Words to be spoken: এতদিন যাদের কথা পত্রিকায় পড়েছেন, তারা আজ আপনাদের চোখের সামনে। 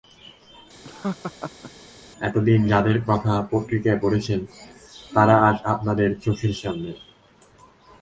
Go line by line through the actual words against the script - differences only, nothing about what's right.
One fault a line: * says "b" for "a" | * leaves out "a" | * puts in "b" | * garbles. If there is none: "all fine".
all fine